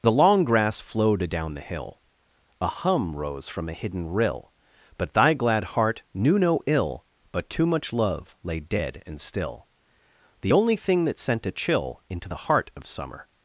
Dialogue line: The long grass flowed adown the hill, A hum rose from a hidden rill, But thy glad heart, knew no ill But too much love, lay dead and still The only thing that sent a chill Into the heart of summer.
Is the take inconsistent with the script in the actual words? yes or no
no